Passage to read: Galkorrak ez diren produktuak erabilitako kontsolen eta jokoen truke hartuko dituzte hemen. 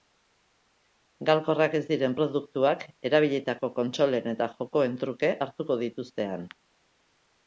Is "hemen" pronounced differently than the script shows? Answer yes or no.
yes